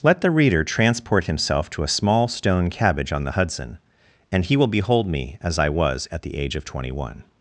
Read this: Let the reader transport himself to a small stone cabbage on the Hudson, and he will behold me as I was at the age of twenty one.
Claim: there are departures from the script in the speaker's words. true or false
false